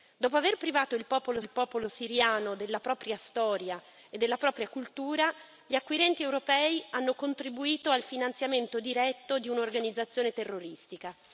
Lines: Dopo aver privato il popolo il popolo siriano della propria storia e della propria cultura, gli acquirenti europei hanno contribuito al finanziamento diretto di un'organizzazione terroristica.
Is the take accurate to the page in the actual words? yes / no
yes